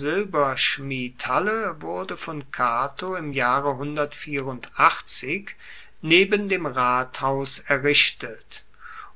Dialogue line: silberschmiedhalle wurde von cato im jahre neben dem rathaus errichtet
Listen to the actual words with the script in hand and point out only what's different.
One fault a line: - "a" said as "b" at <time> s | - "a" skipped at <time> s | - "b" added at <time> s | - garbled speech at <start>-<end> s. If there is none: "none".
none